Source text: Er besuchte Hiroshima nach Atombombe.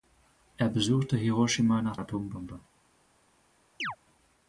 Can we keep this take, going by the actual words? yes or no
yes